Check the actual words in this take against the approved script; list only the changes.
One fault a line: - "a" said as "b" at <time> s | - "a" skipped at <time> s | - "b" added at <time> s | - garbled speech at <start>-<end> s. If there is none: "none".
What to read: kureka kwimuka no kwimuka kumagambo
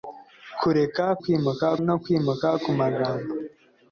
none